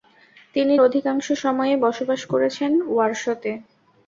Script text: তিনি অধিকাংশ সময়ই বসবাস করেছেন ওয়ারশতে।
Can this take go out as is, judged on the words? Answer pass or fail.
pass